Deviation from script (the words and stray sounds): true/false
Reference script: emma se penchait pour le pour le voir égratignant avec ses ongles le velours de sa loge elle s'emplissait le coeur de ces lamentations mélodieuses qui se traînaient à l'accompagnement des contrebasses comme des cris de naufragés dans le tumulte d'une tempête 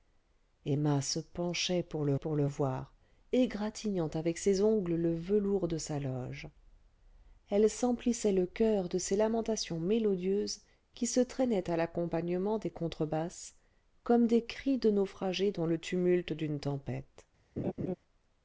true